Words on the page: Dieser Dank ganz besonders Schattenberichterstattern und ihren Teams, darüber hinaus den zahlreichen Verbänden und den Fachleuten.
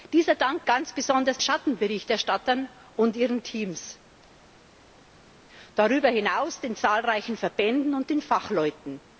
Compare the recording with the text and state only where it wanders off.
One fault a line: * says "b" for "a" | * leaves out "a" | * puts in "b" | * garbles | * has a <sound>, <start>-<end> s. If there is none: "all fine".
all fine